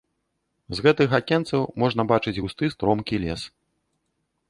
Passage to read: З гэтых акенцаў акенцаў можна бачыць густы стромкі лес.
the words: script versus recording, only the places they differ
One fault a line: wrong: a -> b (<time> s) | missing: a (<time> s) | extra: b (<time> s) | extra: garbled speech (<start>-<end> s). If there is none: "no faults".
missing: акенцаў (1.6 s)